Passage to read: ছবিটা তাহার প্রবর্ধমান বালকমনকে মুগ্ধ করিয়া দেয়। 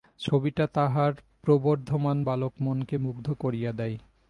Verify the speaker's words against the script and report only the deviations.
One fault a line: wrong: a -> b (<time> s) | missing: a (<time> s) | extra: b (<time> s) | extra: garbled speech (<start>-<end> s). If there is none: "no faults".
no faults